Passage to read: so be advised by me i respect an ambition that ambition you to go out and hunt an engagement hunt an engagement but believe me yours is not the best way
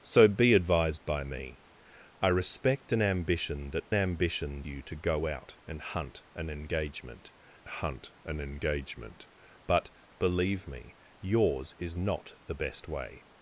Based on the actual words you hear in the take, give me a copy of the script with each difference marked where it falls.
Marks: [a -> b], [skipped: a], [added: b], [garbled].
so be advised by me i respect an ambition that ambition you to go out and hunt an engagement hunt an engagement but believe me yours is not the best way